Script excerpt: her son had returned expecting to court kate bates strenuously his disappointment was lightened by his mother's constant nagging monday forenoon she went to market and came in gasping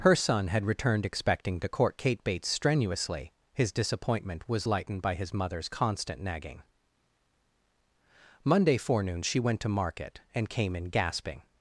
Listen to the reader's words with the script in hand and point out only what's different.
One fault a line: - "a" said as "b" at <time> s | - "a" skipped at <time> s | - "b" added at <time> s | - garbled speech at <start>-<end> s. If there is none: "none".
none